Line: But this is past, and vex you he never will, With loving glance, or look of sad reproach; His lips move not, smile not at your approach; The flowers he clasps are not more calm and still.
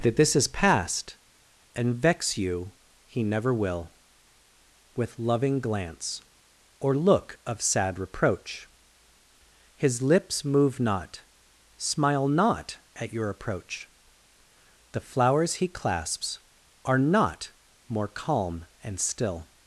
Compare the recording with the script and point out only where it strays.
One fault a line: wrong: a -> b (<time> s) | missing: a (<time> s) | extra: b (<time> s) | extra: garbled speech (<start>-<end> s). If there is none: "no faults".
wrong: But -> That (0.0 s)